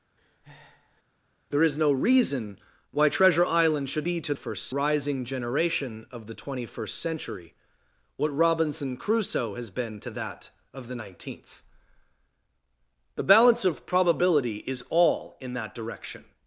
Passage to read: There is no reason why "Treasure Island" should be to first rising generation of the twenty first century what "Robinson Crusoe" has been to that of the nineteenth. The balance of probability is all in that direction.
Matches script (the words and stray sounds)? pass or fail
fail